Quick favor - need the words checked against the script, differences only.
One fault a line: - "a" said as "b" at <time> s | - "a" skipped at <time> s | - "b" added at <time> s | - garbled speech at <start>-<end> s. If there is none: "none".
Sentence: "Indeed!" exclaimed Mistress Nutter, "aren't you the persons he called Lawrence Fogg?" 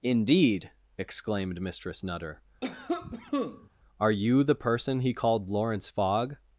- "aren't" said as "are" at 4.0 s
- "persons" said as "person" at 4.6 s